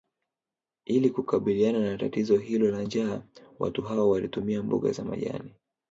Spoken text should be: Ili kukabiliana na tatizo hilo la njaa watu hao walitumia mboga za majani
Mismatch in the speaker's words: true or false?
false